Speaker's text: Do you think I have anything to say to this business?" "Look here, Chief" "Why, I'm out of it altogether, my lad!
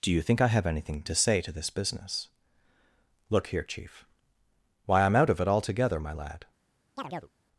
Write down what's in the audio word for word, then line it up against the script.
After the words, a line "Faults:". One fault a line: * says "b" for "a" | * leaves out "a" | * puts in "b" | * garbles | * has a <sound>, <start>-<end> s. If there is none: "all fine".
Do you think I have anything to say to this business?" "Look here, Chief" "Why, I'm out of it altogether, my lad!
Faults:
* has a chirp, 7.0-7.3 s